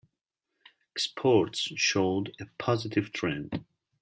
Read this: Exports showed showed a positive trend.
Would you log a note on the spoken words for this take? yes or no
yes